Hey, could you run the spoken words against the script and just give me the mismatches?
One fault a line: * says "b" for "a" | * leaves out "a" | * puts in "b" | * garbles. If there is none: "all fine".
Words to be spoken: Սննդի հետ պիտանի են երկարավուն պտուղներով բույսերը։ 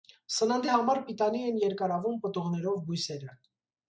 * says "համար" for "հետ"